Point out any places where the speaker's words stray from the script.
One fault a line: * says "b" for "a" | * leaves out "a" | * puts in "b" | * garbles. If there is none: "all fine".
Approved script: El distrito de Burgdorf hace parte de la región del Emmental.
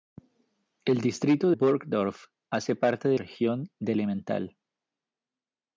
* leaves out "de"
* leaves out "la"